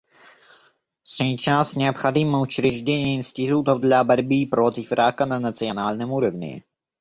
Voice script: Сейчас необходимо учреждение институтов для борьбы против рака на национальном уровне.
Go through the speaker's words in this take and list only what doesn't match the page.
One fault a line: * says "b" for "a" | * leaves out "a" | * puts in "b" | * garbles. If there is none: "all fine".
all fine